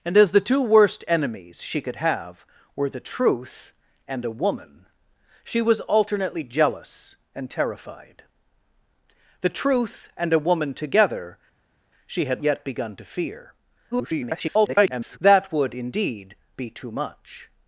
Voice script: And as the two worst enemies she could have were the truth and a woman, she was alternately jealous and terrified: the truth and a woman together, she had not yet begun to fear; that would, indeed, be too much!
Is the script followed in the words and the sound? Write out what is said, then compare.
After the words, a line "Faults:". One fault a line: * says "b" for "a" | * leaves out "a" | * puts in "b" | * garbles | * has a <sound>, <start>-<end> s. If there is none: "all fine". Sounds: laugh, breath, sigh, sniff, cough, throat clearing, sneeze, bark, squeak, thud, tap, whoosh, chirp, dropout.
And as the two worst enemies she could have were the truth and a woman, she was alternately jealous and terrified: the truth and a woman together, she had yet begun to fear; [garbled] that would, indeed, be too much!
Faults:
* leaves out "not"
* garbles